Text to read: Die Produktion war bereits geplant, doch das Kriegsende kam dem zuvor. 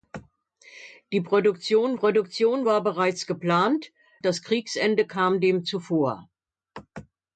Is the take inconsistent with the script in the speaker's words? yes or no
yes